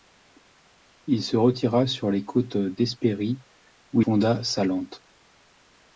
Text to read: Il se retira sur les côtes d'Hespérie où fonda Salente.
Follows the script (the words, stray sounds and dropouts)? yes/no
yes